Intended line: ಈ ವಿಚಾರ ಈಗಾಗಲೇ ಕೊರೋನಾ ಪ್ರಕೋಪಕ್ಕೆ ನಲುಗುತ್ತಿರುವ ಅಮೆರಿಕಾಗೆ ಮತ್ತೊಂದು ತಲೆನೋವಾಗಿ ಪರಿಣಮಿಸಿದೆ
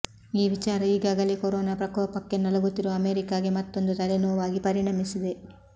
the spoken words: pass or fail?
pass